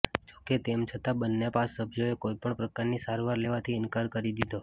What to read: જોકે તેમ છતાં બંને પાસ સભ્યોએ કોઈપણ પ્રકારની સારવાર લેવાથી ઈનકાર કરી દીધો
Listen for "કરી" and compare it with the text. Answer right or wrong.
right